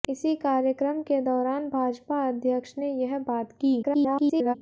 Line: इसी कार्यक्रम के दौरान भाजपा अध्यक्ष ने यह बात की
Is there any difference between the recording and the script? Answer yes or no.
yes